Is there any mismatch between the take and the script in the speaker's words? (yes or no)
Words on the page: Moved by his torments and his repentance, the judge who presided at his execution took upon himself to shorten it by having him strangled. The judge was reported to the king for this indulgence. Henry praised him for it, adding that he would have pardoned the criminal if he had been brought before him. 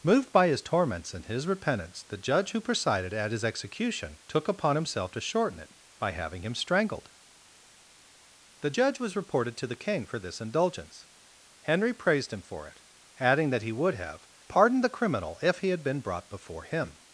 no